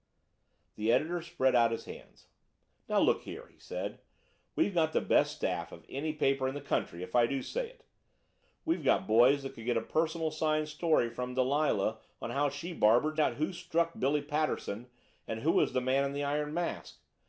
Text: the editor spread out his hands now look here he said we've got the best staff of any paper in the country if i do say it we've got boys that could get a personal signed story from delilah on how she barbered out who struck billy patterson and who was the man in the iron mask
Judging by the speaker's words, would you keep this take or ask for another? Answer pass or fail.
pass